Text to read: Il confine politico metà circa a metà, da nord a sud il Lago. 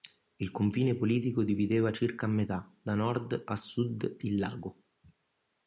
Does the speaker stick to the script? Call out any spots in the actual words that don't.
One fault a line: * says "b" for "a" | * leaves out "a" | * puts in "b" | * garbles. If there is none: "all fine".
* says "divideva" for "metà"